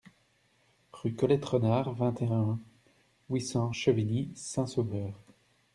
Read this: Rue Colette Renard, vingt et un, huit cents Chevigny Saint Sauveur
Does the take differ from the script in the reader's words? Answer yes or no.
no